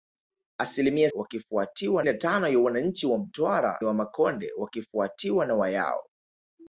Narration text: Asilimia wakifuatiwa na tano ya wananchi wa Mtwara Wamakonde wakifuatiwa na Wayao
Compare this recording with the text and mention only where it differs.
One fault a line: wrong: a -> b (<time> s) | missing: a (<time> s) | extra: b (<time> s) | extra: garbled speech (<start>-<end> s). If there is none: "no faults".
no faults